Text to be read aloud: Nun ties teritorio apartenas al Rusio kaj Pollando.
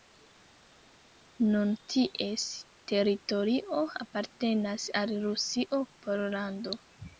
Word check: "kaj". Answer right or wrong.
wrong